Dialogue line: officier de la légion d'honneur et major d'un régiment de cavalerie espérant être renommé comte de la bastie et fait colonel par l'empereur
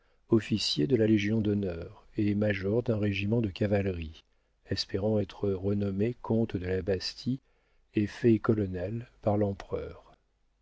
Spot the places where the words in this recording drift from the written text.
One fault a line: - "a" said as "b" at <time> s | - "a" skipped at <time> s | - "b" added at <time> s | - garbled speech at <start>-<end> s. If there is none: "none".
none